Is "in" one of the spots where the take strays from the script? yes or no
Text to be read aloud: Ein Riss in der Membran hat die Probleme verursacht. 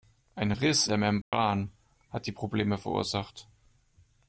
yes